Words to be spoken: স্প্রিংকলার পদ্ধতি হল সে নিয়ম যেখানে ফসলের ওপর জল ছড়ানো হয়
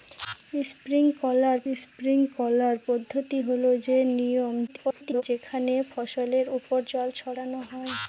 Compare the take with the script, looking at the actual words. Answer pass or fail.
fail